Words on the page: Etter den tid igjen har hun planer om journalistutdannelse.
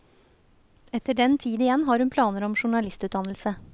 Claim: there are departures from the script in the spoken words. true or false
false